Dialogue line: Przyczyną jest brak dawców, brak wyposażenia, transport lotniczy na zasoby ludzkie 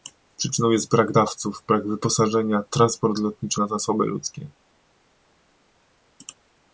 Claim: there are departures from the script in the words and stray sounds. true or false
false